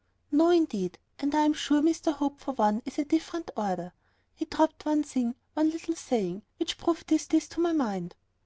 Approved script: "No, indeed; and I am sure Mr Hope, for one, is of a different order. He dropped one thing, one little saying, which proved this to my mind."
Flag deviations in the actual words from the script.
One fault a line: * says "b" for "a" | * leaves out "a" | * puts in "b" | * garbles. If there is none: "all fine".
* puts in "this"